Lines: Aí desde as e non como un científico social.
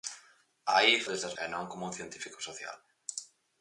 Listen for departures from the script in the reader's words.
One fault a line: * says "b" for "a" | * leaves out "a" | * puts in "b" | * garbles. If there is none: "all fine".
all fine